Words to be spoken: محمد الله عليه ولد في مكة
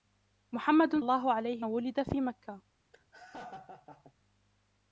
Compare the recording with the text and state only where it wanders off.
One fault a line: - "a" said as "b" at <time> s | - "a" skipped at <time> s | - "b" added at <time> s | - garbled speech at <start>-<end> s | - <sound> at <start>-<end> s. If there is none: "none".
- laugh at 2.9-4.1 s